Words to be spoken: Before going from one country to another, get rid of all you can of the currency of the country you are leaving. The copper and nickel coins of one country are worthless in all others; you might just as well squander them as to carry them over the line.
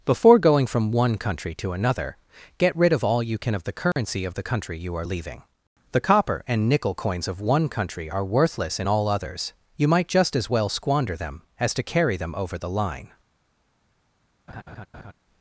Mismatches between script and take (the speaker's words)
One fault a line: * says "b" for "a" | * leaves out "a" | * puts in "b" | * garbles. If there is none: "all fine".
all fine